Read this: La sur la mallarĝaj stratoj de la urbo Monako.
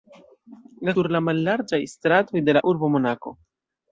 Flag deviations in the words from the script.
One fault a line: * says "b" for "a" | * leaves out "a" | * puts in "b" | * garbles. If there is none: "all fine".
all fine